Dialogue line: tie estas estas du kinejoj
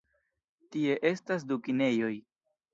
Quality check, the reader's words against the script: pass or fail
fail